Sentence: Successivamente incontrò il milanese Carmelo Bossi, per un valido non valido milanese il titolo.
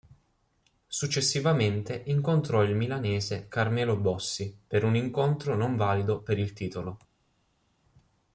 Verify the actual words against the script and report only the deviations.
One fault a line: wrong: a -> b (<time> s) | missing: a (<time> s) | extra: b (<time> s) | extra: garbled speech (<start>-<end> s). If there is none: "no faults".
wrong: valido -> incontro (5.0 s)
wrong: milanese -> per (6.2 s)